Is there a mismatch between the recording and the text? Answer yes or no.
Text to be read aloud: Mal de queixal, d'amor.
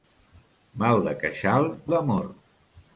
no